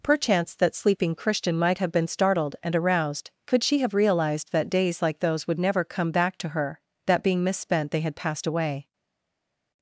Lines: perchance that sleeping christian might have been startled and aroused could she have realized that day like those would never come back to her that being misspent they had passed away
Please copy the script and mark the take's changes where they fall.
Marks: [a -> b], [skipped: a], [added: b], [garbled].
perchance that sleeping christian might have been startled and aroused could she have realized that [day -> days] like those would never come back to her that being misspent they had passed away